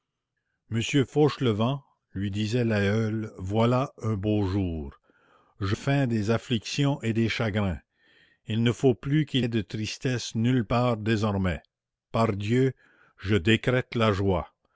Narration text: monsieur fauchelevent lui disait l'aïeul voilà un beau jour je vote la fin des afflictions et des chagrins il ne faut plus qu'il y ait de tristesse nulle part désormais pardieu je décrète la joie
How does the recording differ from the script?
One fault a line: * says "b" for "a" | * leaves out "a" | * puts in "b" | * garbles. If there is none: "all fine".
* leaves out "vote la"
* leaves out "y"